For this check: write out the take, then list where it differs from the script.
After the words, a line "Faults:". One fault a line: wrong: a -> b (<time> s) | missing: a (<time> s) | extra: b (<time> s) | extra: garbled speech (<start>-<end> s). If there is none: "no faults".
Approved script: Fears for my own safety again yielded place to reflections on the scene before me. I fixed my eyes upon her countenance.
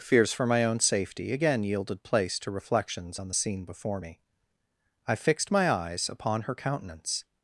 Fears for my own safety again yielded place to reflections on the scene before me. I fixed my eyes upon her countenance.
Faults:
no faults